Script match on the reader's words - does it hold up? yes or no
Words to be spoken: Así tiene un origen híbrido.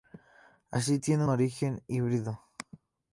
no